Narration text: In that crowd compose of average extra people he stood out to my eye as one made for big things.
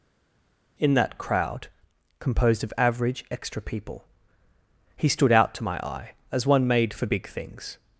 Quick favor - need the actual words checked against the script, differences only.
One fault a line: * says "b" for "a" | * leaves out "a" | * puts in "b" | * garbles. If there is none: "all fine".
* says "composed" for "compose"